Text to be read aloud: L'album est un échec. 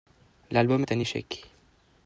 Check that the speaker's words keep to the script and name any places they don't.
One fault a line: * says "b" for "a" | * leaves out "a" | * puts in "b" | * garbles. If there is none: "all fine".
all fine